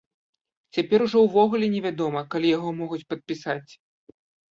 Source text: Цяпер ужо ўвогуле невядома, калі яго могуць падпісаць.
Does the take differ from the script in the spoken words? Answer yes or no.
no